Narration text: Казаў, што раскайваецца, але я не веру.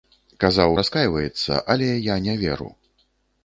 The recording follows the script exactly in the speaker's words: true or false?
false